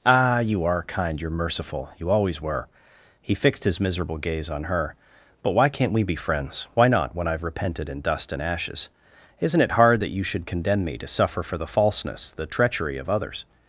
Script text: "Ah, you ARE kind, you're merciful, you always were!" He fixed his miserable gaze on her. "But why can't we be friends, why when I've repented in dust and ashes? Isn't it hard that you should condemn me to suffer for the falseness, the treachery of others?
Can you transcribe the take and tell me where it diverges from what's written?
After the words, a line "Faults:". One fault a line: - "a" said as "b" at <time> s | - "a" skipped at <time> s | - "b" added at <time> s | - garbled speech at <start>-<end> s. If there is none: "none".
"Ah, you ARE kind, you're merciful, you always were!" He fixed his miserable gaze on her. "But why can't we be friends, why not, when I've repented in dust and ashes? Isn't it hard that you should condemn me to suffer for the falseness, the treachery of others?
Faults:
- "not" added at 6.9 s